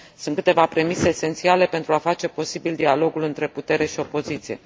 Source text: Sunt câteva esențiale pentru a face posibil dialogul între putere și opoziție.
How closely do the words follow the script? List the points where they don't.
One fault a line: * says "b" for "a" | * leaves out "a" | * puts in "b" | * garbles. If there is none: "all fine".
* puts in "premise"